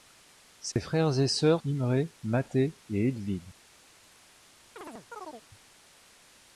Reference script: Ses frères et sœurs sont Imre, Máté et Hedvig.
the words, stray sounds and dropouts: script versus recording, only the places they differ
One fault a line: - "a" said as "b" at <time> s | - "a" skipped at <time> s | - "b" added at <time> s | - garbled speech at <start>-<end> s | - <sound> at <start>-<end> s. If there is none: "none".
- dropout at 0.7-0.8 s
- "sont" skipped at 1.6 s
- chirp at 4.8-5.5 s